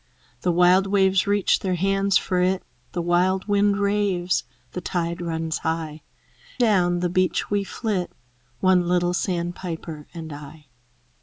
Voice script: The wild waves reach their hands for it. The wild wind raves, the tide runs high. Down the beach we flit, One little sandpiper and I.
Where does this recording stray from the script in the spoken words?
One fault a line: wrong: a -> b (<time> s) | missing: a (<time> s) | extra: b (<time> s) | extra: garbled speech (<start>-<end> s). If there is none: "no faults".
no faults